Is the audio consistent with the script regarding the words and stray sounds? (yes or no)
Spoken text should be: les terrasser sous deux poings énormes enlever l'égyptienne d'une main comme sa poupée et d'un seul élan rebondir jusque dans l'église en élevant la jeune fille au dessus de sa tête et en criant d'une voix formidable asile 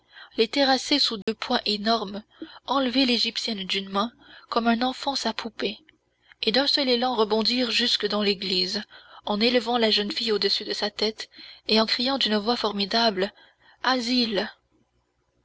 no